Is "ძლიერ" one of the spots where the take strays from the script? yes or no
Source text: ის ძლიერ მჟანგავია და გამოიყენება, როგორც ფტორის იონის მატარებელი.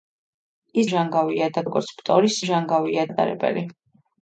yes